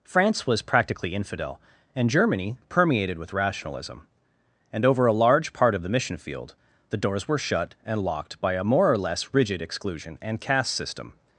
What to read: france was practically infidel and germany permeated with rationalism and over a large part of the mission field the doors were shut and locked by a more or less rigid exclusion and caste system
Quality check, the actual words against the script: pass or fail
pass